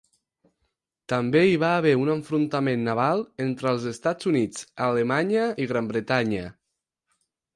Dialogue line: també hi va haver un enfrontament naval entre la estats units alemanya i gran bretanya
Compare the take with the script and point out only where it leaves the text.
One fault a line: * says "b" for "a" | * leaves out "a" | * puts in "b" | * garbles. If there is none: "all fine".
* says "els" for "la"